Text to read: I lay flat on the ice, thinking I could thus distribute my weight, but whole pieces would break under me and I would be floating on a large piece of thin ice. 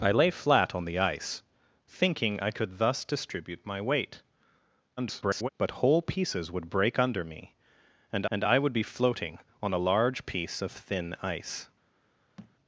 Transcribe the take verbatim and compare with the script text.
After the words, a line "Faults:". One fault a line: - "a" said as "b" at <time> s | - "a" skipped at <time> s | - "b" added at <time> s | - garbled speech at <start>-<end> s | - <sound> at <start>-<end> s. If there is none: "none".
I lay flat on the ice, thinking I could thus distribute my weight, [garbled] but whole pieces would break under me and and I would be floating on a large piece of thin ice.
Faults:
- garbled speech at 5.0-5.5 s
- "and" added at 8.3 s
- thud at 12.4-12.6 s